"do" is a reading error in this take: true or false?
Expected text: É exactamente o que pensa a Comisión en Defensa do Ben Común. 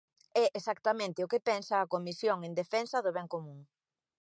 false